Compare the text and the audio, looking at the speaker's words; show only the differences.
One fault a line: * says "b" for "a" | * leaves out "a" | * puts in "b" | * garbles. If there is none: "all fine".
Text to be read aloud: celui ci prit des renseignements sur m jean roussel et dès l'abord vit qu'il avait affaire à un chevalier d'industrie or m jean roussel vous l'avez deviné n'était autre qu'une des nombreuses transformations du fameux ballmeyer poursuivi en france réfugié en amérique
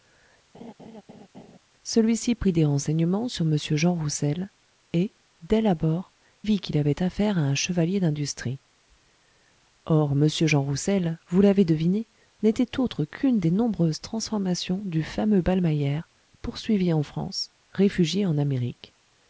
all fine